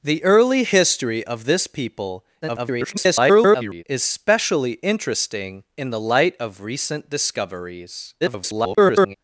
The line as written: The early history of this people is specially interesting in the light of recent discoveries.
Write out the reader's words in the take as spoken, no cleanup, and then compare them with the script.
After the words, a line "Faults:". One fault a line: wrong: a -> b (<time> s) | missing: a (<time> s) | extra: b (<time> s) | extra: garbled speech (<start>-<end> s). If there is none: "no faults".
The early history of this people [garbled] is specially interesting in the light of recent discoveries. [garbled]
Faults:
extra: garbled speech (2.4-3.8 s)
extra: garbled speech (8.2-9.2 s)